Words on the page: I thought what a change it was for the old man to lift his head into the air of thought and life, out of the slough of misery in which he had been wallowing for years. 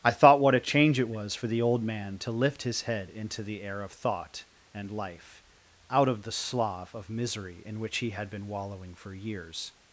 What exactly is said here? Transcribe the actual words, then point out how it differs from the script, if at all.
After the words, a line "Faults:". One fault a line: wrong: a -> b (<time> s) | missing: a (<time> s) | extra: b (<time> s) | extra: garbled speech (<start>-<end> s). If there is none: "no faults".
I thought what a change it was for the old man to lift his head into the air of thought and life, out of the slough of misery in which he had been wallowing for years.
Faults:
no faults